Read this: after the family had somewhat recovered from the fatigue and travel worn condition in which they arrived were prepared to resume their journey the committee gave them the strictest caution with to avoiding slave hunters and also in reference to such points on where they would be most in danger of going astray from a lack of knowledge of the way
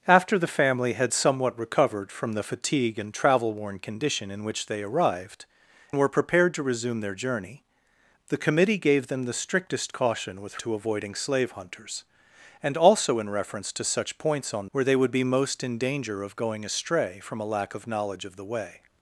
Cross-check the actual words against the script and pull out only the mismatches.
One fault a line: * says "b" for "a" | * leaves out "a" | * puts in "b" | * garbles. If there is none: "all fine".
all fine